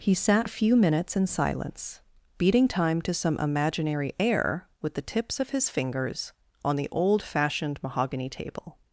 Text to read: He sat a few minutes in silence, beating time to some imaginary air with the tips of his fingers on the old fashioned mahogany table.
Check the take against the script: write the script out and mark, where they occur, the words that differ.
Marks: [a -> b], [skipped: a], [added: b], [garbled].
He sat a few minutes in silence, beating time to some imaginary air with the tips of his fingers on the old fashioned mahogany table.